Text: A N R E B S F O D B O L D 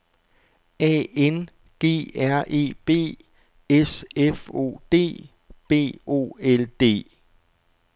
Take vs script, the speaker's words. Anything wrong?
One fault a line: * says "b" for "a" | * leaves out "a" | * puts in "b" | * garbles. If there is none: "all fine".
* puts in "G"